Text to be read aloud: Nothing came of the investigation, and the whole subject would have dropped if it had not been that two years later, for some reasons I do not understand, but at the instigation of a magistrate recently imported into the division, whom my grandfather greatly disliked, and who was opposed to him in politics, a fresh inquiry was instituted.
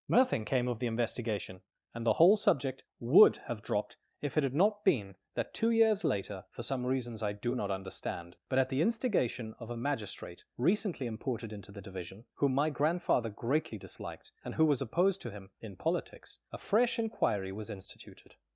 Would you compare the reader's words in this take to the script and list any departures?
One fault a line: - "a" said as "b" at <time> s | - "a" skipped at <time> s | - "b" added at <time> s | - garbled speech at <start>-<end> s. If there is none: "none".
none